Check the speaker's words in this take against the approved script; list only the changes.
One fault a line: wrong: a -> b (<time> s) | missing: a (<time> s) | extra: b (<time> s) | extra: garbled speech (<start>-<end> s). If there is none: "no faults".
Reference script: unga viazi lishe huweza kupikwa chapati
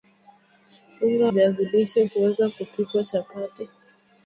no faults